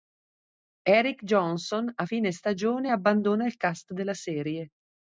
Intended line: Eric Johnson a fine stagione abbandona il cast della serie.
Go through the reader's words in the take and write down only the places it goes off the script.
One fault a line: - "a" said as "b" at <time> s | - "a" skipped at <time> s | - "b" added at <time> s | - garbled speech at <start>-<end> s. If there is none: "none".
none